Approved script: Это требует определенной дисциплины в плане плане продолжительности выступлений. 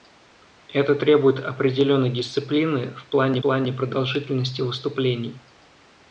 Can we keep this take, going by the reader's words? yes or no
yes